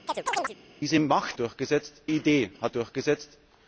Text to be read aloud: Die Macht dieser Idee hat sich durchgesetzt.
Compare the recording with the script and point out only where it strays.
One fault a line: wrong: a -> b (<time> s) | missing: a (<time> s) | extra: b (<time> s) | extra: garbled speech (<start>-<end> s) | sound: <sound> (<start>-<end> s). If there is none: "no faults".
sound: chirp (0.1-0.6 s)
wrong: dieser -> durchgesetzt (1.3 s)
missing: sich (2.7 s)